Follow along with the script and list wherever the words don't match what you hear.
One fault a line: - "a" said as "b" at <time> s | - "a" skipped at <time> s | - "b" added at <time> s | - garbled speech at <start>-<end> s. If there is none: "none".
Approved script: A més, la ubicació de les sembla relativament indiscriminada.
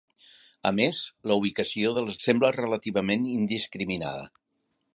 none